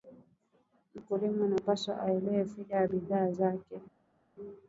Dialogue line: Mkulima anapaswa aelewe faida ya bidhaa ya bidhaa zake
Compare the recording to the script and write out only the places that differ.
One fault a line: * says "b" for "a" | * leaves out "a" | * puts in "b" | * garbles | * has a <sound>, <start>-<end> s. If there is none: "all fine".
* leaves out "ya bidhaa"